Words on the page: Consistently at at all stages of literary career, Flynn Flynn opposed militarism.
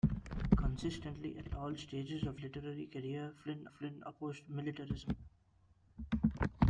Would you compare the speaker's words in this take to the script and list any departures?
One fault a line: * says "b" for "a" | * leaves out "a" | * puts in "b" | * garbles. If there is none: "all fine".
all fine